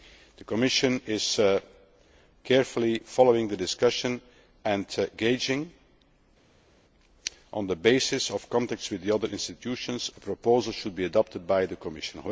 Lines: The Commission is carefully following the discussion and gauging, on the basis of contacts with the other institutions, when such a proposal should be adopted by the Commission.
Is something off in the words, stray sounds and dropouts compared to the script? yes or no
yes